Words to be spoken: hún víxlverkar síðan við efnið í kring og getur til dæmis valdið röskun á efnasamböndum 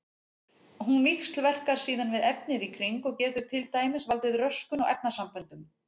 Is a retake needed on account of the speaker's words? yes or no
no